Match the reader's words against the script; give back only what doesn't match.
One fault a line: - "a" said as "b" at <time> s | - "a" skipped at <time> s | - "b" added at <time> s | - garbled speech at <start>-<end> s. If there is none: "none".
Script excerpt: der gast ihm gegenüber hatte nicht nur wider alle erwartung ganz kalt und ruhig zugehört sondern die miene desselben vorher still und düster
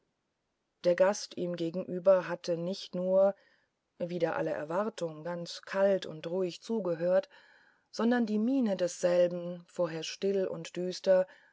none